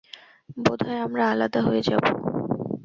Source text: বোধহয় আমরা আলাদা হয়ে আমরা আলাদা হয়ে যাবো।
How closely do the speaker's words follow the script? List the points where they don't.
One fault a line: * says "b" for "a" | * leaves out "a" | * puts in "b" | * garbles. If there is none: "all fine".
* leaves out "আমরা আলাদা হয়ে"